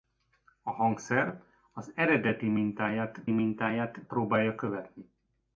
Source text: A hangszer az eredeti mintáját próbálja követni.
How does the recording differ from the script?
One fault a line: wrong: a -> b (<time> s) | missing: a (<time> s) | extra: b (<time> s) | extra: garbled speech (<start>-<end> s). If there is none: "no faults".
extra: mintáját (3.3 s)